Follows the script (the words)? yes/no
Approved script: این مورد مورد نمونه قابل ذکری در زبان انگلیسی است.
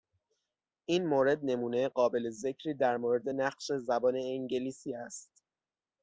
no